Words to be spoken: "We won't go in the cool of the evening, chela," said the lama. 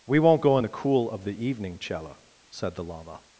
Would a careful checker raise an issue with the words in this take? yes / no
no